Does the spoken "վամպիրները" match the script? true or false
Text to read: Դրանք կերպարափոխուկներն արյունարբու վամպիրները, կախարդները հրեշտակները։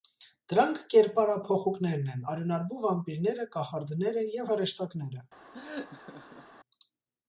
true